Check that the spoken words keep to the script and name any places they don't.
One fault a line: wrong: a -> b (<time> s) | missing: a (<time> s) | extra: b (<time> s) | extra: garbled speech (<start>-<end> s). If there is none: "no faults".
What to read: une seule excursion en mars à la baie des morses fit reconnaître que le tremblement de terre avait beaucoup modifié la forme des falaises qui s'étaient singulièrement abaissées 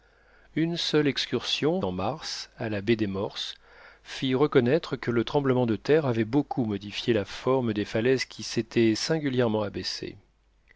no faults